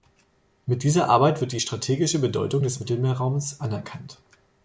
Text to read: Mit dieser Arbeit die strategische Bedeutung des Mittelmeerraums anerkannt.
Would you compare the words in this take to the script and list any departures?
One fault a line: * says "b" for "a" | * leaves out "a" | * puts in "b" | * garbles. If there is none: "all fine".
* puts in "wird"